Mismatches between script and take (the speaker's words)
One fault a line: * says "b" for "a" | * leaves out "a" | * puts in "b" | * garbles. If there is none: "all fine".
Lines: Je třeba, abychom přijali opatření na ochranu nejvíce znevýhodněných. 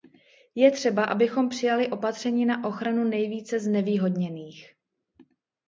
all fine